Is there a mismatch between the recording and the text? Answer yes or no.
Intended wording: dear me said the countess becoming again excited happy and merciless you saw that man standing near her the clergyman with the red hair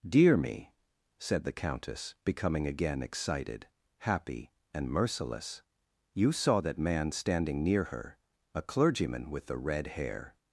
yes